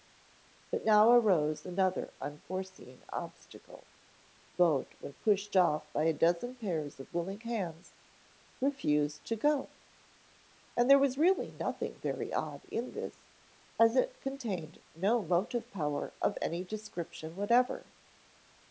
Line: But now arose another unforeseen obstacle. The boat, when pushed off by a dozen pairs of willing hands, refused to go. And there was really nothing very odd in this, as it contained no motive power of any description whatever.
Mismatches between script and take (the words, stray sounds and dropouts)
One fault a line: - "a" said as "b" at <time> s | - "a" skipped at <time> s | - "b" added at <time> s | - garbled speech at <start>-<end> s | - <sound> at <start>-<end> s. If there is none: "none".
- "The" skipped at 3.9 s